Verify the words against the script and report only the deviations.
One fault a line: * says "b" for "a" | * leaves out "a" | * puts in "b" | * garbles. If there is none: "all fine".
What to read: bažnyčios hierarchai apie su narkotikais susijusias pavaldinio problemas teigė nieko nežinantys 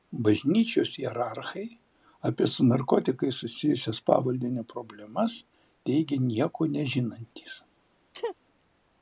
all fine